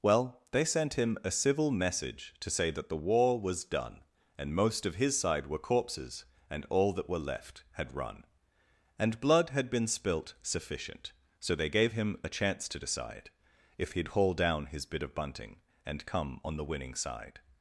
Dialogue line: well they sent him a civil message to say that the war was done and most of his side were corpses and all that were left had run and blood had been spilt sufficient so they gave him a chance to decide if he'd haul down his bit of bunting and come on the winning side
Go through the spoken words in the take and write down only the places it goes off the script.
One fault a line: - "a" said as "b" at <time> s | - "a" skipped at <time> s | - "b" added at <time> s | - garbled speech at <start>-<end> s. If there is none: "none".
none